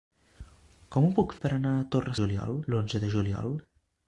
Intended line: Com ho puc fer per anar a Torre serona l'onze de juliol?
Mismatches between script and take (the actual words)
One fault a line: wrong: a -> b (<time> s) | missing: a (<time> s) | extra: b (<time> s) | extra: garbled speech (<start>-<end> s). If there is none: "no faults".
missing: fer (1.4 s)
wrong: serona -> juliol (2.2 s)